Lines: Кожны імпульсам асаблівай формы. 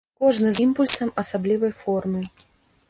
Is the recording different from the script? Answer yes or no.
no